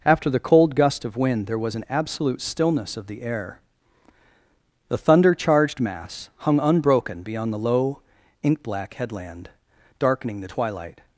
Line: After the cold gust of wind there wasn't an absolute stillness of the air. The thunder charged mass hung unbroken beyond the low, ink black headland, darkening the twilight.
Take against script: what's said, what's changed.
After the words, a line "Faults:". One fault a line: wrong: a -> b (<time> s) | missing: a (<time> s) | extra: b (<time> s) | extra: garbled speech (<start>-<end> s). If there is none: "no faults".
After the cold gust of wind there was an absolute stillness of the air. The thunder charged mass hung unbroken beyond the low, ink black headland, darkening the twilight.
Faults:
wrong: wasn't -> was (1.6 s)